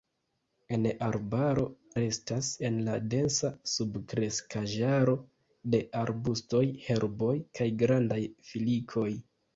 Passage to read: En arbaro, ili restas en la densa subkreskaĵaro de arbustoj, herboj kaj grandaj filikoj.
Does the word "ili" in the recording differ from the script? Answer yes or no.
yes